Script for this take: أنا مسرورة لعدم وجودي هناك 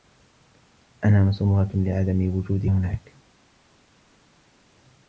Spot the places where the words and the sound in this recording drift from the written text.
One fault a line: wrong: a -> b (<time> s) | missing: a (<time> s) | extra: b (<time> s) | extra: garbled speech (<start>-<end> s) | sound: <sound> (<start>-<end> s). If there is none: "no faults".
no faults